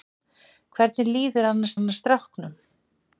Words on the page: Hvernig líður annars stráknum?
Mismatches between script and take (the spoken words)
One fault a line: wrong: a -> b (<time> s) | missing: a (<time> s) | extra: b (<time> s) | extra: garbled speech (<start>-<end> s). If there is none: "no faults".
extra: annars (1.8 s)